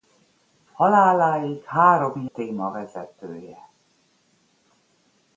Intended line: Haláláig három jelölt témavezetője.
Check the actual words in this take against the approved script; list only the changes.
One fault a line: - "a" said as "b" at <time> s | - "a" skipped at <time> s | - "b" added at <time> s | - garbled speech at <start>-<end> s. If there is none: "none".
- "jelölt" skipped at 2.3 s